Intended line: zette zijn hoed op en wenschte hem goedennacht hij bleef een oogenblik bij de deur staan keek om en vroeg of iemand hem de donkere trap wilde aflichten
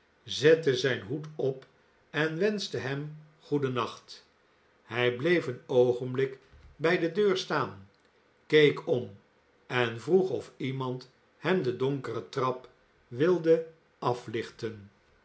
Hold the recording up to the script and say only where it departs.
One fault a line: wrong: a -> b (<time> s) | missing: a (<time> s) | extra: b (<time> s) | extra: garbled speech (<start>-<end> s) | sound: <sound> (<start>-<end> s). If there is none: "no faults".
no faults